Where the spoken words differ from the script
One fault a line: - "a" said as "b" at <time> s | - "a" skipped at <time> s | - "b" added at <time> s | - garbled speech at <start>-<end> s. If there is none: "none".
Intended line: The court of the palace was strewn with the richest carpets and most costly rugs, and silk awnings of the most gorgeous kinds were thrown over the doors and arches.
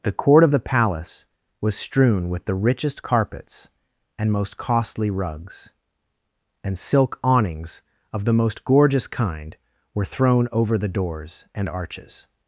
- "kinds" said as "kind" at 9.1 s